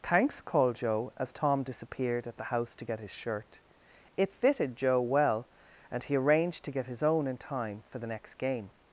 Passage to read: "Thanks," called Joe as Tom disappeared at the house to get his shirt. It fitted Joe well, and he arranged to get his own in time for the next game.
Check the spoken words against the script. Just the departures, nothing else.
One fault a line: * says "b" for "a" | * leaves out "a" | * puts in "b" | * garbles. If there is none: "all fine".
all fine